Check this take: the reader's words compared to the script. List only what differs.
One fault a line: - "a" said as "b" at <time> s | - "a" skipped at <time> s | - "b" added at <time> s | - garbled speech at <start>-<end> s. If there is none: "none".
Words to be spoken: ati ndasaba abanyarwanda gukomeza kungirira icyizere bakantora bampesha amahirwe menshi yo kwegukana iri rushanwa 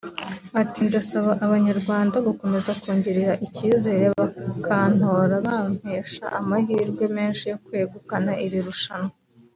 none